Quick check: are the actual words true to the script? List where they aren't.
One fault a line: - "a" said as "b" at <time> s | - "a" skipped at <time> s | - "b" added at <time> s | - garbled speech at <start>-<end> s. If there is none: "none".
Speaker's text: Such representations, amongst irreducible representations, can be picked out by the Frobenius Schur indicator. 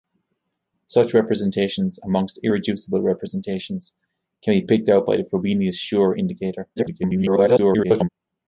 - garbled speech at 6.8-8.1 s